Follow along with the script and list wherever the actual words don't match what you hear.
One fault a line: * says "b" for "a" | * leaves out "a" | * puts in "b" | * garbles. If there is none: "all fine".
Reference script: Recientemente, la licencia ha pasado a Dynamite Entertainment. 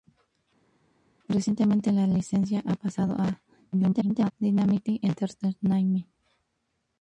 * garbles